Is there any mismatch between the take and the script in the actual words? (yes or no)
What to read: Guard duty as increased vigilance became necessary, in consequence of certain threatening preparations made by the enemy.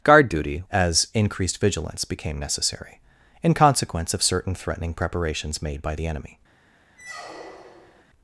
no